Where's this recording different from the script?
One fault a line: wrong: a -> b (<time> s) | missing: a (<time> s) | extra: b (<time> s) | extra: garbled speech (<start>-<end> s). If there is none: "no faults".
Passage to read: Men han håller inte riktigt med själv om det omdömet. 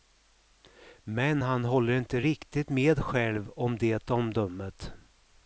no faults